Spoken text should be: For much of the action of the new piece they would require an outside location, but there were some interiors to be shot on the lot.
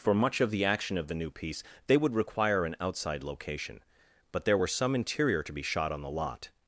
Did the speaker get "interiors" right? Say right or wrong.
wrong